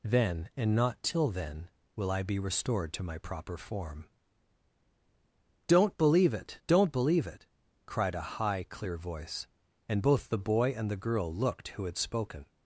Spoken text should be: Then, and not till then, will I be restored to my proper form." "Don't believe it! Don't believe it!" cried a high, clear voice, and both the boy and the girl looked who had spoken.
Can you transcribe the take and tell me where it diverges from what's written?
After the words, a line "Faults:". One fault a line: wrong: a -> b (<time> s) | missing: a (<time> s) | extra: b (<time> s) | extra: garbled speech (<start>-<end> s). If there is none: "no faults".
Then, and not till then, will I be restored to my proper form." "Don't believe it! Don't believe it!" cried a high, clear voice, and both the boy and the girl looked who had spoken.
Faults:
no faults